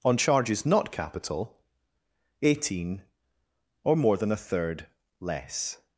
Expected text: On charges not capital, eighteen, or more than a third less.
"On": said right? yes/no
yes